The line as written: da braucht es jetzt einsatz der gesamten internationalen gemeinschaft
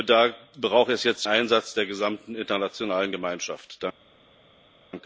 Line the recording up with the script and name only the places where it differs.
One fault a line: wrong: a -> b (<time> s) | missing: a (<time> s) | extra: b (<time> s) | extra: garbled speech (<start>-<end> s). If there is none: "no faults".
no faults